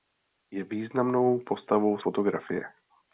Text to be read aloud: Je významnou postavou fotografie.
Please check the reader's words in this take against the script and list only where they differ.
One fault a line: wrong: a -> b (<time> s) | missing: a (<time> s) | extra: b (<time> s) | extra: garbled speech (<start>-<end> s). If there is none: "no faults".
no faults